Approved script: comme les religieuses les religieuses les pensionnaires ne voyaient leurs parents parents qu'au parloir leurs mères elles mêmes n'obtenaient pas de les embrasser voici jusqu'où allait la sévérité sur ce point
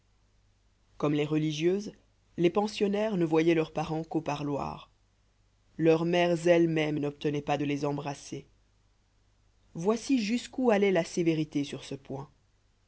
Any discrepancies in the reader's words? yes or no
yes